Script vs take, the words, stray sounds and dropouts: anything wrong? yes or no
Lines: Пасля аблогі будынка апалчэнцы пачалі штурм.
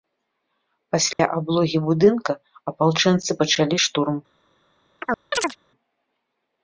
yes